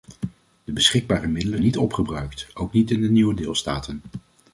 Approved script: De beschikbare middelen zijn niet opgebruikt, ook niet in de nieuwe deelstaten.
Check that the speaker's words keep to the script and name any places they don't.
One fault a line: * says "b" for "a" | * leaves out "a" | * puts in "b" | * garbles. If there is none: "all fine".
* leaves out "zijn"